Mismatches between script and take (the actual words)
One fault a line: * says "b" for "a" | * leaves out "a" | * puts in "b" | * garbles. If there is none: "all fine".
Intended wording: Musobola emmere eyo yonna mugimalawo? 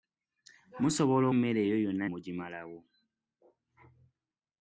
all fine